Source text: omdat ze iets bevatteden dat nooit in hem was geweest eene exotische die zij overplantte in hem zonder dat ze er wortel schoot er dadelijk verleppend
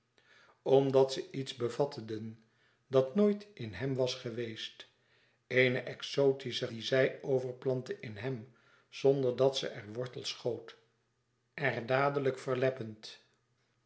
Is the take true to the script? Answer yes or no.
yes